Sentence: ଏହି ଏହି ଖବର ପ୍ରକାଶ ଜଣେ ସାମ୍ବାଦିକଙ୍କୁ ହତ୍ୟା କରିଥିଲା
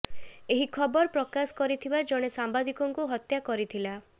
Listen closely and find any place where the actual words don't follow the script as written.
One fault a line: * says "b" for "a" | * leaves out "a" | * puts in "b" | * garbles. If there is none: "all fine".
* leaves out "ଏହି"
* puts in "କରିଥିବା"